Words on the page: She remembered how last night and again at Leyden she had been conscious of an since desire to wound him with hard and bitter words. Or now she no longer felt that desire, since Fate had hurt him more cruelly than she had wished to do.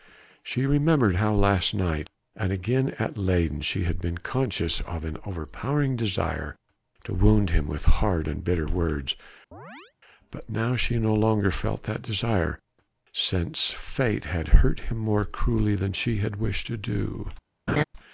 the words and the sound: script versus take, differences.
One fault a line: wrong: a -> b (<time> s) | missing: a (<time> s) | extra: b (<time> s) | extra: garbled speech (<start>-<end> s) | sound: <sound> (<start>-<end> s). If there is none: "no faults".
wrong: since -> overpowering (5.2 s)
sound: chirp (9.5-9.9 s)
wrong: Or -> But (10.3 s)
sound: laugh (17.7-17.8 s)